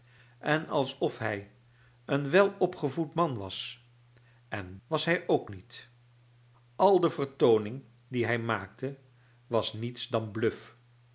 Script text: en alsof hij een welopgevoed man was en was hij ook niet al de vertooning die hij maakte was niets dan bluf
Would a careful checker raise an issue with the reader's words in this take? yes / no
no